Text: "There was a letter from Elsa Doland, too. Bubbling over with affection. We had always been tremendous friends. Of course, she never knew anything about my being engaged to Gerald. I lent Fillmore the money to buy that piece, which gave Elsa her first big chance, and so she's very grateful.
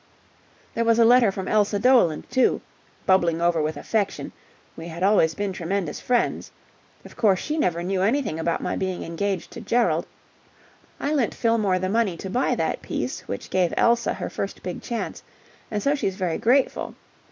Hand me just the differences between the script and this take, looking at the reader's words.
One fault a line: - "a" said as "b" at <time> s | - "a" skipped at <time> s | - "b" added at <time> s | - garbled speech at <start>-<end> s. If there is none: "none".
none